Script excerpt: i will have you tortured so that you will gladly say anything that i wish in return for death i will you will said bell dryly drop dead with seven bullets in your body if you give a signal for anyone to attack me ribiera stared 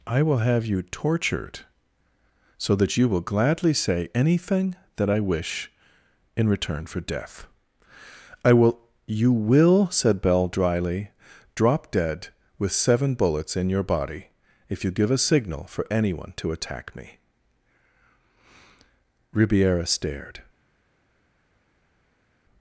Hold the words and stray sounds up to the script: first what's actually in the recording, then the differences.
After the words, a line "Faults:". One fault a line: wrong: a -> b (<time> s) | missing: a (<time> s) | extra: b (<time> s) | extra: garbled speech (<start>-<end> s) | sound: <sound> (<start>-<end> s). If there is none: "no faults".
i will have you tortured so that you will gladly say anything that i wish in return for death i will you will said bell dryly drop dead with seven bullets in your body if you give a signal for anyone to attack me ribiera stared
Faults:
no faults